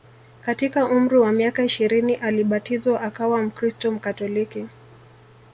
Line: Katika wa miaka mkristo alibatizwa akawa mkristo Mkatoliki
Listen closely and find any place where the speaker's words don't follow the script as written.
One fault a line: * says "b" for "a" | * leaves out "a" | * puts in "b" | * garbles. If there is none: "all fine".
* puts in "umri"
* says "ishirini" for "mkristo"